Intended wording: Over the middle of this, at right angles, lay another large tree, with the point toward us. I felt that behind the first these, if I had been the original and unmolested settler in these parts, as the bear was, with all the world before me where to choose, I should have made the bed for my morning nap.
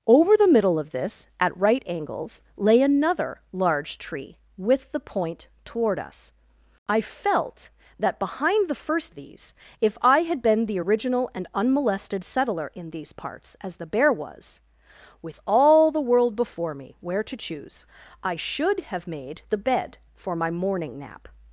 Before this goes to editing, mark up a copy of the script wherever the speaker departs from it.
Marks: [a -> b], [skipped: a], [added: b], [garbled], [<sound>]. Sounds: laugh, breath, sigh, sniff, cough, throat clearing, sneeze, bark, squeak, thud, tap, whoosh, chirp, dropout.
Over the middle of this, at right angles, lay another large tree, with the point toward us. I felt that behind the first these, if I had been the original and unmolested settler in these parts, as the bear was, with all the world before me where to choose, I should have made the bed for my morning nap.